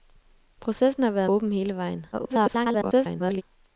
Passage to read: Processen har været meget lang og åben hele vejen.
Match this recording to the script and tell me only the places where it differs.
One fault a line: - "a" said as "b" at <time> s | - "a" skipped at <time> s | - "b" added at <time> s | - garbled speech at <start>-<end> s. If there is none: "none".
- "meget lang og" skipped at 1.3 s
- garbled speech at 2.1-3.4 s